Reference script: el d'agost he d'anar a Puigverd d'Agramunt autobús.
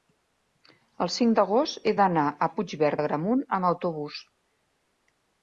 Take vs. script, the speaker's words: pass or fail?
fail